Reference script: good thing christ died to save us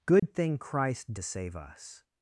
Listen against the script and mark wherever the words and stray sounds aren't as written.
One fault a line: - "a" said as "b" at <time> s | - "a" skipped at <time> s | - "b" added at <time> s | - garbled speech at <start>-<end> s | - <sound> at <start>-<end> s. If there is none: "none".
- dropout at 0.2-0.2 s
- "died" skipped at 1.1 s